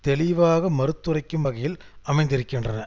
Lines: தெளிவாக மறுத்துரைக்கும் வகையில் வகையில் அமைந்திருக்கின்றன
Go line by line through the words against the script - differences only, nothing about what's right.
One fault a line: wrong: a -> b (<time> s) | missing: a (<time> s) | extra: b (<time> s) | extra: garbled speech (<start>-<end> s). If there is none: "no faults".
missing: வகையில் (1.8 s)